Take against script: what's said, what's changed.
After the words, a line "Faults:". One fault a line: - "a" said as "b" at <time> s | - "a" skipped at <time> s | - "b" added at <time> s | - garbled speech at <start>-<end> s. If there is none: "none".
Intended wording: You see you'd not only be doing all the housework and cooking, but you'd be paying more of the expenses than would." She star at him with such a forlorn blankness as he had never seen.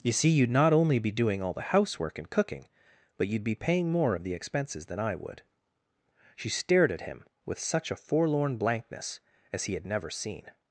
You see you'd not only be doing all the housework and cooking, but you'd be paying more of the expenses than I would." She stared at him with such a forlorn blankness as he had never seen.
Faults:
- "I" added at 5.0 s
- "star" said as "stared" at 6.5 s